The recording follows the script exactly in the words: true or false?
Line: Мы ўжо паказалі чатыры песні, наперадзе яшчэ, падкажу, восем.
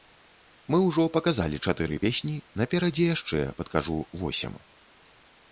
true